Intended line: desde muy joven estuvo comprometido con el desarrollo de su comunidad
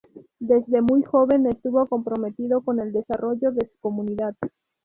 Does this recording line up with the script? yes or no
yes